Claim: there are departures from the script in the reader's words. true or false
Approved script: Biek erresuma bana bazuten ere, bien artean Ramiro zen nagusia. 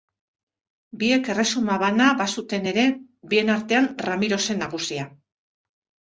false